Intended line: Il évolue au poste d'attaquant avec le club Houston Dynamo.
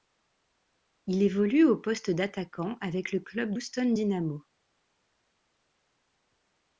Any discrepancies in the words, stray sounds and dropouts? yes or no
no